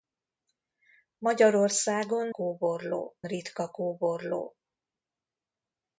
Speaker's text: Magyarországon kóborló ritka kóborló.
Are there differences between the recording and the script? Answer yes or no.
no